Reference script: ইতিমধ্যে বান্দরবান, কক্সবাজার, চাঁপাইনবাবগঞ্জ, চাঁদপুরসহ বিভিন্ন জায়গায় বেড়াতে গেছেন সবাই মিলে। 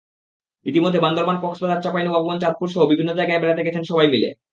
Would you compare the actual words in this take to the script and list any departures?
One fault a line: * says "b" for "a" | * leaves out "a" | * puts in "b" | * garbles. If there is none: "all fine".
all fine